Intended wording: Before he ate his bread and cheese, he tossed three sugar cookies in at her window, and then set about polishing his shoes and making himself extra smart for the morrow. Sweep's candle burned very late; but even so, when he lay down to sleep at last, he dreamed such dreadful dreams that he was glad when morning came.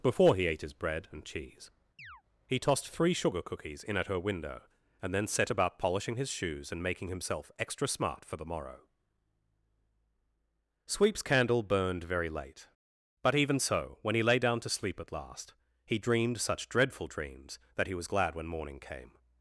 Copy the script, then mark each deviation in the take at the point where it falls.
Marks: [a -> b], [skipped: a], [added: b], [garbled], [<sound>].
Before he ate his bread and cheese, [chirp] he tossed three sugar cookies in at her window, and then set about polishing his shoes and making himself extra smart for the morrow. Sweep's candle burned very late; but even so, when he lay down to sleep at last, he dreamed such dreadful dreams that he was glad when morning came.